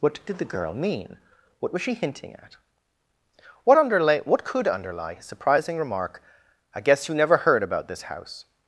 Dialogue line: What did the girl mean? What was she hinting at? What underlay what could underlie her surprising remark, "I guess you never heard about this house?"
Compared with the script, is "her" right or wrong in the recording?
wrong